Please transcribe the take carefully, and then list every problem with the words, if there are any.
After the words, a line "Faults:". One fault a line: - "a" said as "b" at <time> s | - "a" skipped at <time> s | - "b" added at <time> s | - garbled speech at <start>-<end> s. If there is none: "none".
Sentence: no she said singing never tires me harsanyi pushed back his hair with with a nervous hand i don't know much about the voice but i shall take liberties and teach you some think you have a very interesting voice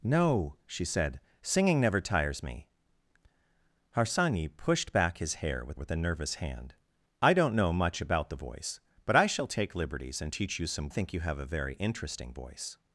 no she said singing never tires me harsanyi pushed back his hair with with a nervous hand i don't know much about the voice but i shall take liberties and teach you some think you have a very interesting voice
Faults:
none